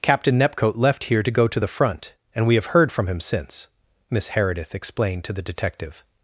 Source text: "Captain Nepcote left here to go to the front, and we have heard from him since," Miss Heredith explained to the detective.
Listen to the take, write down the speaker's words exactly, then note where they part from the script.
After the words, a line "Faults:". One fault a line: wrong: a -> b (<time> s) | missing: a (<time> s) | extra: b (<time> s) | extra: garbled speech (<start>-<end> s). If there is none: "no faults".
"Captain Nepcote left here to go to the front, and we have heard from him since," Miss Heredith explained to the detective.
Faults:
no faults